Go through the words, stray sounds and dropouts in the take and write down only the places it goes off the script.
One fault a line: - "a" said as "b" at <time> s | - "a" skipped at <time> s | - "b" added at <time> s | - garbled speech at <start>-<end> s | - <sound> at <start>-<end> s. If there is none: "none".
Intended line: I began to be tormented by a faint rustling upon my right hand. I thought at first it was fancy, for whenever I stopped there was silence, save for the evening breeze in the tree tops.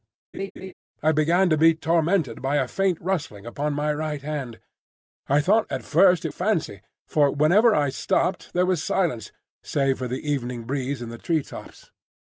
- laugh at 0.3-0.7 s
- "was" skipped at 6.3 s